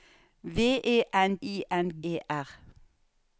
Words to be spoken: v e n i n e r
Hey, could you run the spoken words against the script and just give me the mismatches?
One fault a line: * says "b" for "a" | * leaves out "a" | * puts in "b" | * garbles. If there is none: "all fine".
all fine